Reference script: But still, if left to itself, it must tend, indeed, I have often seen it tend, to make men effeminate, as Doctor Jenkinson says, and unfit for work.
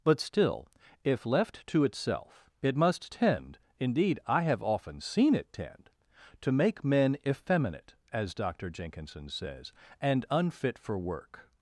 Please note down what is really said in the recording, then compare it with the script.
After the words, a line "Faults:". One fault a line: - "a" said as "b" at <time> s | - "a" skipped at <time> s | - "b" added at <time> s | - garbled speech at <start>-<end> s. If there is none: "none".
But still, if left to itself, it must tend, indeed, I have often seen it tend, to make men effeminate, as Doctor Jenkinson says, and unfit for work.
Faults:
none